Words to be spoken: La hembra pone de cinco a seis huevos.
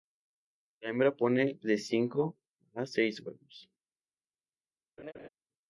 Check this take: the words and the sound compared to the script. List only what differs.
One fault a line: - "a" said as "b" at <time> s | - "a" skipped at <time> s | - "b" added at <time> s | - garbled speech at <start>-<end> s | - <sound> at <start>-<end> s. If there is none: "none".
- laugh at 5.0-5.3 s